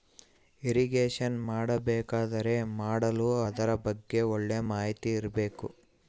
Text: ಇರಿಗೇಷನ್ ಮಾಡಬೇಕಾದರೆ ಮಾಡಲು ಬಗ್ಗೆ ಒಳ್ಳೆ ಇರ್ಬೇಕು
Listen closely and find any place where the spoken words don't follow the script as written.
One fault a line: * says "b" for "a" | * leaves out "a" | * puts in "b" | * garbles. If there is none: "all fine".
* puts in "ಅದರ"
* puts in "ಮಾಹಿತಿ"